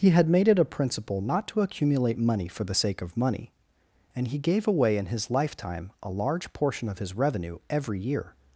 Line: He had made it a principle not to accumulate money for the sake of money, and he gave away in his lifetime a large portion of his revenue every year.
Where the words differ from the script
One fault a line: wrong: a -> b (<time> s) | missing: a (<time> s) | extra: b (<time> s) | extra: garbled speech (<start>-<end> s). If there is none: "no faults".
no faults